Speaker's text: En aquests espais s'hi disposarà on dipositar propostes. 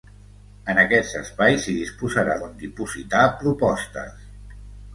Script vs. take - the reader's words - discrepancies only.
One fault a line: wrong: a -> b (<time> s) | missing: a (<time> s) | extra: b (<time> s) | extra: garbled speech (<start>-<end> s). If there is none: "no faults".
no faults